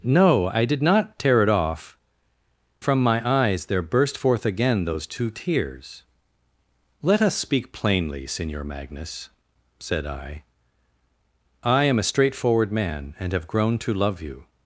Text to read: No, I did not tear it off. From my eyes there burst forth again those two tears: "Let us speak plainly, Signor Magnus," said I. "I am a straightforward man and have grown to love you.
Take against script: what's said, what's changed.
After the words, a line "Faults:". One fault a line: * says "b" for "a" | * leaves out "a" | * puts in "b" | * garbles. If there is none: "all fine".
No, I did not tear it off. From my eyes there burst forth again those two tears: "Let us speak plainly, Signor Magnus," said I. "I am a straightforward man and have grown to love you.
Faults:
all fine